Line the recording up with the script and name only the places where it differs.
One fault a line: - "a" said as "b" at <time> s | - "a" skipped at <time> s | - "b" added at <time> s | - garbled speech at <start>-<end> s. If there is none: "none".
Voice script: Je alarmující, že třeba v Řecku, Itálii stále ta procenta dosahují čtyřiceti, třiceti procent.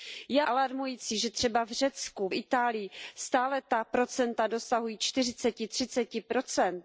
none